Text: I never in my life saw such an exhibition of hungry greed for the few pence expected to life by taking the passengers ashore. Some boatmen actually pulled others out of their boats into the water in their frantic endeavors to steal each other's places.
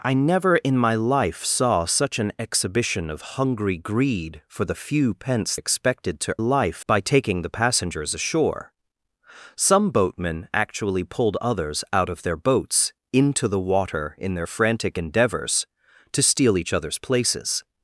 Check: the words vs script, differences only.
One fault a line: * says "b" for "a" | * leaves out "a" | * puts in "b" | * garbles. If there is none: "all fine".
all fine